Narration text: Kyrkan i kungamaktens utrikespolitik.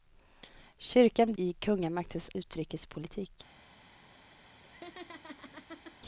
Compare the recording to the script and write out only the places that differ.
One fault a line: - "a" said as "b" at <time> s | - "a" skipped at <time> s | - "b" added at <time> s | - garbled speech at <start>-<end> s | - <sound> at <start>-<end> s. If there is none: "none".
- laugh at 4.6-6.0 s